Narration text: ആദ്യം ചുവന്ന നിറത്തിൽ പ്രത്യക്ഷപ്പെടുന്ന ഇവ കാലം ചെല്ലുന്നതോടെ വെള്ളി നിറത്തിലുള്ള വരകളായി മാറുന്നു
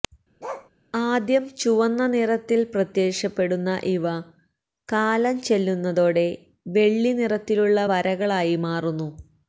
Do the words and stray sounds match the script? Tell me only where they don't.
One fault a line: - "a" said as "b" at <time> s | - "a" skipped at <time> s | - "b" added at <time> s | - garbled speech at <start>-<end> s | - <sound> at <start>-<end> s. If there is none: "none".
- bark at 0.4-0.7 s